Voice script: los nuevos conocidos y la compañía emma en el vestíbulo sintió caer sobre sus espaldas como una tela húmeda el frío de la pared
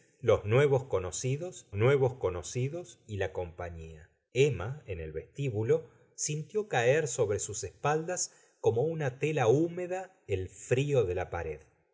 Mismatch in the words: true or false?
true